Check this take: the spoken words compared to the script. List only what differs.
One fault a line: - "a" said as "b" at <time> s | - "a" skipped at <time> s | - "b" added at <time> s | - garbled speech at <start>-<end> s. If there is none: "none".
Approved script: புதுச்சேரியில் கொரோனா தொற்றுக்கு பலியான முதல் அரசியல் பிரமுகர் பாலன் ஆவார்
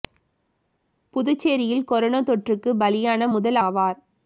- "அரசியல் பிரமுகர் பாலன்" skipped at 3.6 s